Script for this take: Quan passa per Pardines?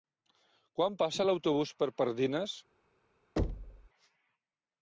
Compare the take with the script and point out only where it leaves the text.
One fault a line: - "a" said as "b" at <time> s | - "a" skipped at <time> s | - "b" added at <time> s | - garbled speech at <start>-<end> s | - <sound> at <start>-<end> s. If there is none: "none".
- "l'autobús" added at 1.3 s
- thud at 3.4-3.9 s